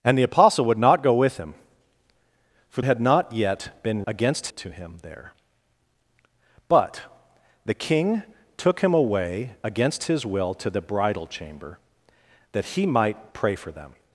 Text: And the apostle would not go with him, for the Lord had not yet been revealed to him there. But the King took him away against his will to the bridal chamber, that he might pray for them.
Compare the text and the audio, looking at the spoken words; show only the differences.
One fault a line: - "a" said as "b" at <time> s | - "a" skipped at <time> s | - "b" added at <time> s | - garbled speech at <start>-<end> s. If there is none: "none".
- "the Lord" skipped at 2.8 s
- "revealed" said as "against" at 4.1 s